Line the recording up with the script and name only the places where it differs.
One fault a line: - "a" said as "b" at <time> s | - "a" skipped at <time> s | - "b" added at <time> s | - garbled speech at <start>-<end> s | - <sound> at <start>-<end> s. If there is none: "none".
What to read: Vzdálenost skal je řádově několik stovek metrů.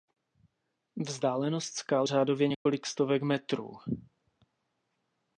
- "je" skipped at 2.1 s
- dropout at 2.5-2.7 s